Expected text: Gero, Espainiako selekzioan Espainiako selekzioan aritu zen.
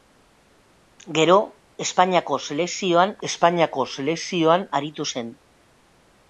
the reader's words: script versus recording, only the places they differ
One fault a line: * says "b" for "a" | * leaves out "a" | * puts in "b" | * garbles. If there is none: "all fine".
all fine